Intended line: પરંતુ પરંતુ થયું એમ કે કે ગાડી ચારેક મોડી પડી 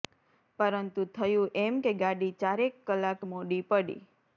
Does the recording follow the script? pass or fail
fail